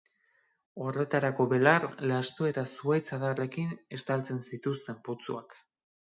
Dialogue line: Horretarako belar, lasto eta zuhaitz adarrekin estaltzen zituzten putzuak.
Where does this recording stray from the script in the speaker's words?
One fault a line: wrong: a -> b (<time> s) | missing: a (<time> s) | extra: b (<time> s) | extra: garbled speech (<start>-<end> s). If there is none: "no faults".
no faults